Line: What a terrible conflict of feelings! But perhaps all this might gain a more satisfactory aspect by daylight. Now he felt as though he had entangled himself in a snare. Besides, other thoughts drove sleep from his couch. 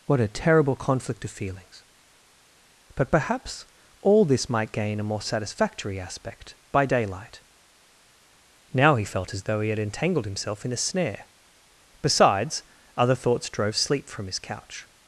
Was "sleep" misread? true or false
false